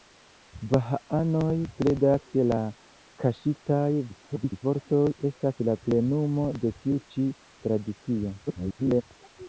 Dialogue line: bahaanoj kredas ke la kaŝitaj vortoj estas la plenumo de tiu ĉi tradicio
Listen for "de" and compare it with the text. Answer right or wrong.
right